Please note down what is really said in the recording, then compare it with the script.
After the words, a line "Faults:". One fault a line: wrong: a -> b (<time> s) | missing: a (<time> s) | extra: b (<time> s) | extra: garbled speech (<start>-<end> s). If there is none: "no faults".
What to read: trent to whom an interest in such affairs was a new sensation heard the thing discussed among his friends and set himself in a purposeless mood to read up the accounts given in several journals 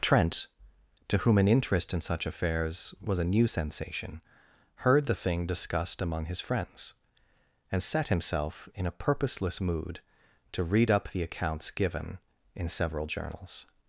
trent to whom an interest in such affairs was a new sensation heard the thing discussed among his friends and set himself in a purposeless mood to read up the accounts given in several journals
Faults:
no faults